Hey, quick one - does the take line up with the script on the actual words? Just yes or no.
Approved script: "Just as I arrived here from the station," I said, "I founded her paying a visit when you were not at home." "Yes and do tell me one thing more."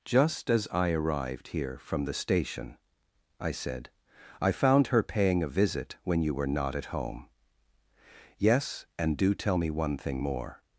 no